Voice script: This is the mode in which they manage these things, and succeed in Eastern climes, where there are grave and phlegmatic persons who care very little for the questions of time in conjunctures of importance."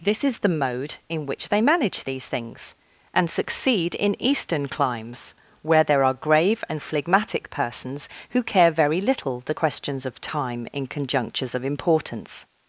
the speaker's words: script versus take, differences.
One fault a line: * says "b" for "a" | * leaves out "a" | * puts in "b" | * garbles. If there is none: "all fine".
* leaves out "for"